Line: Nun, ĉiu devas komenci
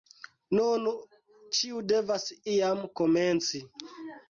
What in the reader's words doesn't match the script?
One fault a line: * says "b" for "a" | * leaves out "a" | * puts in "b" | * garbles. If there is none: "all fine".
* puts in "iam"